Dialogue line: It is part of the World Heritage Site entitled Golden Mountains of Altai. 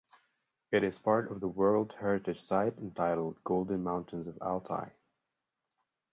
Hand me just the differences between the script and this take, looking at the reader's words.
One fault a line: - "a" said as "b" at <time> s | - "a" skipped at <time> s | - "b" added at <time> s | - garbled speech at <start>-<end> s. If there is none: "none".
none